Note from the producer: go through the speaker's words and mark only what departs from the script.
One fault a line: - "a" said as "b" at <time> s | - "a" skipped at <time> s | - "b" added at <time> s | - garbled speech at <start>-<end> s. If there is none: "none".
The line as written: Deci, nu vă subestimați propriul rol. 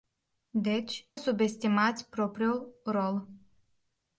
- "nu vă" skipped at 1.1 s